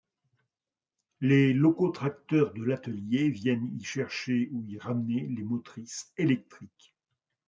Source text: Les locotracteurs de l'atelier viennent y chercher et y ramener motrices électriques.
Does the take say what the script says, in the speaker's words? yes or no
no